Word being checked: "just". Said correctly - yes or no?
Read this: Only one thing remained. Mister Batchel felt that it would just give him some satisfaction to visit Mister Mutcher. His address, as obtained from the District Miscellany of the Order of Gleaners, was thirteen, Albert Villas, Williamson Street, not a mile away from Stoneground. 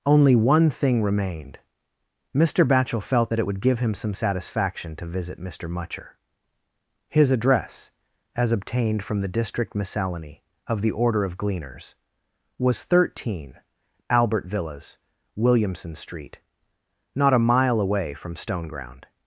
no